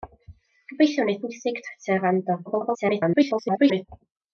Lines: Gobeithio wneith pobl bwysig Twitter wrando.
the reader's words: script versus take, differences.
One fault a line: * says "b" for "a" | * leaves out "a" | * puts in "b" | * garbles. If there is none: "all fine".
* leaves out "pobl"
* garbles